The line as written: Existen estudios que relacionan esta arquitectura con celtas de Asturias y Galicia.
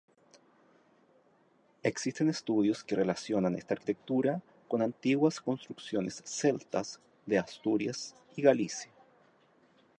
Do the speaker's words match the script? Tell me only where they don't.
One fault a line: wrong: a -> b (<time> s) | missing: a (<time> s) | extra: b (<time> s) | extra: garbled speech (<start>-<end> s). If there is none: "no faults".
extra: antiguas construcciones (4.8 s)